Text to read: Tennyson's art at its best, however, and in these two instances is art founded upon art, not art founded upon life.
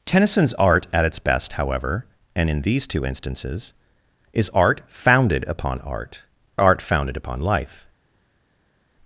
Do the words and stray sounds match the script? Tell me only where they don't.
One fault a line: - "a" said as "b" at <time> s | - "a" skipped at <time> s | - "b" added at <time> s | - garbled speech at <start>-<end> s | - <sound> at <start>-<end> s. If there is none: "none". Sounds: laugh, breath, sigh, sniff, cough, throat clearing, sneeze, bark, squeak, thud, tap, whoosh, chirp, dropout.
- "not" skipped at 6.2 s